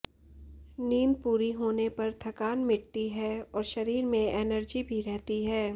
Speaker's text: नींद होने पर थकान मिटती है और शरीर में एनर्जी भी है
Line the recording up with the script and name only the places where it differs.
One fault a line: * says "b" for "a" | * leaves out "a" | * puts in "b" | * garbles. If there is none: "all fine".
* puts in "पूरी"
* puts in "रहती"